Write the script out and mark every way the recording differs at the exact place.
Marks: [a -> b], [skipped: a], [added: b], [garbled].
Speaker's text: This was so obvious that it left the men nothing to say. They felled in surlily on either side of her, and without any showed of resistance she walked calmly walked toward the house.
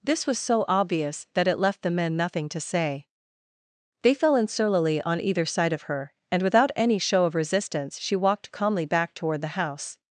This was so obvious that it left the men nothing to say. They [felled -> fell] in surlily on either side of her, and without any [showed -> show] of resistance she walked calmly [walked -> back] toward the house.